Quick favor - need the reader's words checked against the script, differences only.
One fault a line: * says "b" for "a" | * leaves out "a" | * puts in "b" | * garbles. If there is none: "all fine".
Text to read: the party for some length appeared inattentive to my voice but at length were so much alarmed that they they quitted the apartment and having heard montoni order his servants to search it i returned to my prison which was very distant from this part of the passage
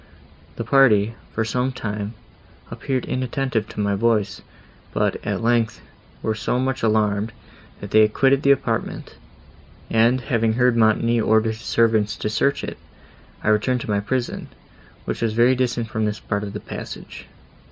* says "time" for "length"
* leaves out "they"